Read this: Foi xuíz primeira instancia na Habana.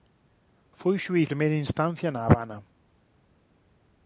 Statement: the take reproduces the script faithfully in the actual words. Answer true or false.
true